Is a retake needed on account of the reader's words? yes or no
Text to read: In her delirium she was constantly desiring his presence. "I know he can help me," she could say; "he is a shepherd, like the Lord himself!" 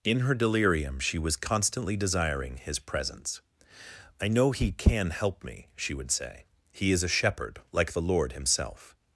yes